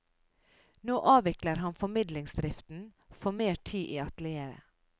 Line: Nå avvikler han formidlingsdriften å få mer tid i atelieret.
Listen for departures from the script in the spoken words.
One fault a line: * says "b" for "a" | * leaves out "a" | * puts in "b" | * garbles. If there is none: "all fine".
all fine